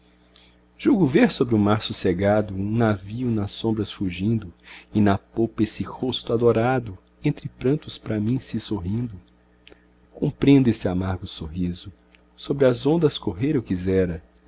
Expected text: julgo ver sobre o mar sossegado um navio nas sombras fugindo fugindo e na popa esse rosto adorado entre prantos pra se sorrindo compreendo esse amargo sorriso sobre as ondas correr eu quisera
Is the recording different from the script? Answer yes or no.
yes